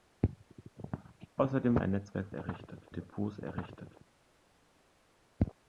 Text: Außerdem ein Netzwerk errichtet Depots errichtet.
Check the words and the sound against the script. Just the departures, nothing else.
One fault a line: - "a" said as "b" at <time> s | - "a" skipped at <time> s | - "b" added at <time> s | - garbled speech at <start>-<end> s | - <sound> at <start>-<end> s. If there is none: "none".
none